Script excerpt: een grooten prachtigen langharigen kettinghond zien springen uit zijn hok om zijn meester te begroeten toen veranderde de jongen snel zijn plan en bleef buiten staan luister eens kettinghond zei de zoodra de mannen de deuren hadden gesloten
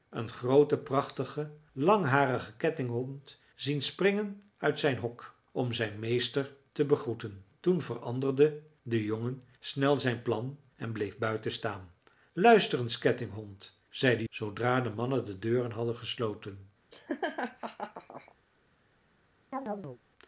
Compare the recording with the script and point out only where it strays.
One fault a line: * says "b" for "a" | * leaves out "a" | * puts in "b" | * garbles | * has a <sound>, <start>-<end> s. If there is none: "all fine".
* has a laugh, 16.9-18.4 s
* has a chirp, 19.5-20.0 s